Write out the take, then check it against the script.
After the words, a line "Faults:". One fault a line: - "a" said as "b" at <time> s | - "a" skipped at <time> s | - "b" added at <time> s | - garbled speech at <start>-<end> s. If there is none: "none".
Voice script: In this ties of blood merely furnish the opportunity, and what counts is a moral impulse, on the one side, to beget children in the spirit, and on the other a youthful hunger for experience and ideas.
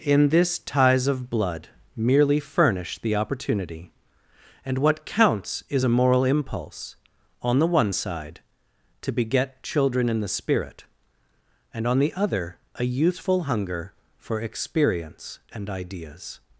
In this ties of blood merely furnish the opportunity, and what counts is a moral impulse, on the one side, to beget children in the spirit, and on the other a youthful hunger for experience and ideas.
Faults:
none